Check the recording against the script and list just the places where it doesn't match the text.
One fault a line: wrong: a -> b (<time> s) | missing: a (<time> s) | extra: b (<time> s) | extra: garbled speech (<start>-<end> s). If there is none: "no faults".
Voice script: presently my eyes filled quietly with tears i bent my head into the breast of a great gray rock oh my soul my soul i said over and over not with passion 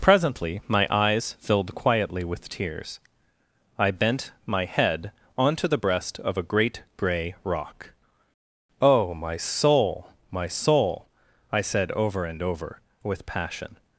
wrong: into -> onto (5.4 s)
missing: not (12.8 s)